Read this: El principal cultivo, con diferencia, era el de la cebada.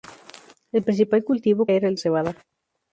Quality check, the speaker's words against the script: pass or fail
fail